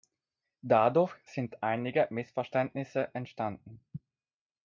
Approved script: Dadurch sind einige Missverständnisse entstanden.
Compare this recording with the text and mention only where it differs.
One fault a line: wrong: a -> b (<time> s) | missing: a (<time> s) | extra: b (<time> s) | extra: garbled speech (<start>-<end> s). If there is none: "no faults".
no faults